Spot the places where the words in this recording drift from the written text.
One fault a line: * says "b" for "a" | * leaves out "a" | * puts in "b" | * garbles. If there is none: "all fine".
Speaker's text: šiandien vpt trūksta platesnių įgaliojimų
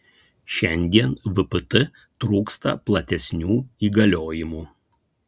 all fine